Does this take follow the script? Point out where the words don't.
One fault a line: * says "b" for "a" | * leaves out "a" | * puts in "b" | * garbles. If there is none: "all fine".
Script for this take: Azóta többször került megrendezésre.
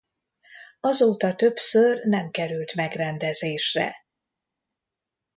* puts in "nem"